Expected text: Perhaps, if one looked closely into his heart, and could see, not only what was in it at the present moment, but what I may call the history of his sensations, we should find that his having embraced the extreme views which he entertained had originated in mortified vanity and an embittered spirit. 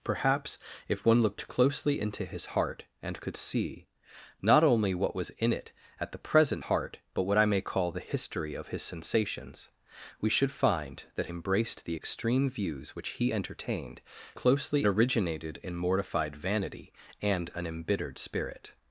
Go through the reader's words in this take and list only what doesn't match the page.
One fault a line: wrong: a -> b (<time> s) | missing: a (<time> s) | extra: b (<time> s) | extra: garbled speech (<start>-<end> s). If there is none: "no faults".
wrong: moment -> heart (6.6 s)
missing: his having (11.3 s)
wrong: had -> closely (14.3 s)